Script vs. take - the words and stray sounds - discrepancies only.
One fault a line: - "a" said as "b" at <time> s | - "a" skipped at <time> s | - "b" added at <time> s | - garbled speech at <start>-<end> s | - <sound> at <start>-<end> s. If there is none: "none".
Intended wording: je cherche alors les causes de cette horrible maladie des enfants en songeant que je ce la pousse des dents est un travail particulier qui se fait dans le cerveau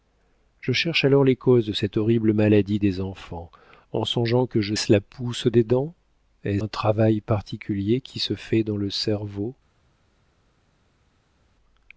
none